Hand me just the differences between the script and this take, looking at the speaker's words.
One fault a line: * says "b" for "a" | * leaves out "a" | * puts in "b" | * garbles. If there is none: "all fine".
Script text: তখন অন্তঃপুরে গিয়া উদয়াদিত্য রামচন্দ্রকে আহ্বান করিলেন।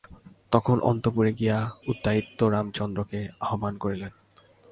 all fine